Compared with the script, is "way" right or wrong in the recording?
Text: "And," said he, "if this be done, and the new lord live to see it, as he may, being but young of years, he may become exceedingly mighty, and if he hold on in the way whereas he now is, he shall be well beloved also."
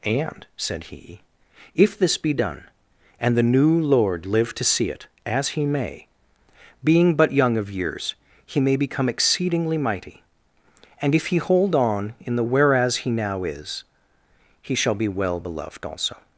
wrong